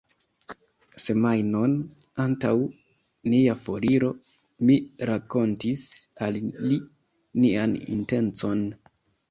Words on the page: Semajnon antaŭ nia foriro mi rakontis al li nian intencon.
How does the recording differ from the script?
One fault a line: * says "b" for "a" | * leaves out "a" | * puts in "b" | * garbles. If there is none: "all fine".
all fine